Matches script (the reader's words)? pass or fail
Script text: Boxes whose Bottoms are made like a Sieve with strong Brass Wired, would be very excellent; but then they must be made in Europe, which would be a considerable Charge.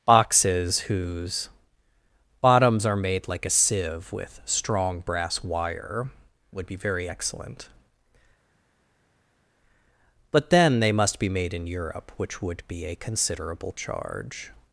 fail